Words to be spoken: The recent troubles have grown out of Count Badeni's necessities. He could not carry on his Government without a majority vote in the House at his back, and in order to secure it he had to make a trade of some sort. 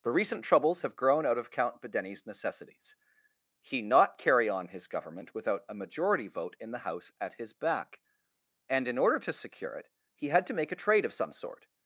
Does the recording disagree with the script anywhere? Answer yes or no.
yes